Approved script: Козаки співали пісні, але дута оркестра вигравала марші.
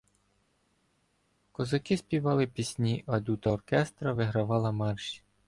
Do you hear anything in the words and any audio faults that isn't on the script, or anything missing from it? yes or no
yes